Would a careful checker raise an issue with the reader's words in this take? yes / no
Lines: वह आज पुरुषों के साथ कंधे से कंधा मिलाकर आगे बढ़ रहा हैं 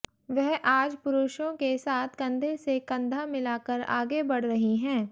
yes